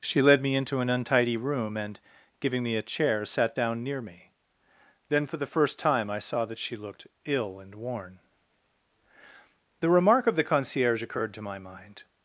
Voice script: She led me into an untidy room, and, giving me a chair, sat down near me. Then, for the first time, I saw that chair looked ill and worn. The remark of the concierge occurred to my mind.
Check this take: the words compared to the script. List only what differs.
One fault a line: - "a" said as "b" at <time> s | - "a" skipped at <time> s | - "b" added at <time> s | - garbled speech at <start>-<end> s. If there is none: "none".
- "chair" said as "she" at 6.6 s